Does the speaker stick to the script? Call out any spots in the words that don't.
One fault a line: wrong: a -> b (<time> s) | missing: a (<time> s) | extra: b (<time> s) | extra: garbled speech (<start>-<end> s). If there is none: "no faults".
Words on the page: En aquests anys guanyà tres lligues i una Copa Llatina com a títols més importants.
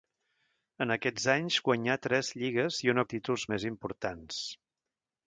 missing: Copa Llatina com (3.0 s)